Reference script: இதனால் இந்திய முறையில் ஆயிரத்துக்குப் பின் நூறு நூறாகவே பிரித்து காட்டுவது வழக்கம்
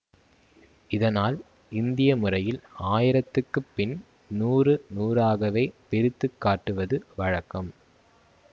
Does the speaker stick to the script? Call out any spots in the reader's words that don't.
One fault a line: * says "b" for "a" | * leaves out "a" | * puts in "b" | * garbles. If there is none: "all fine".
all fine